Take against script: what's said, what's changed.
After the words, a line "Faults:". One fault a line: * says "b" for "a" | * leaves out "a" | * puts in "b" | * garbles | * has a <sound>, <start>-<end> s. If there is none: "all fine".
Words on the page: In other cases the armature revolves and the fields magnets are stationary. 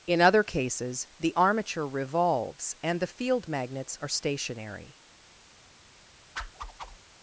In other cases the armature revolves and the field magnets are stationary.
Faults:
* says "field" for "fields"
* has a whoosh, 6.4-7.0 s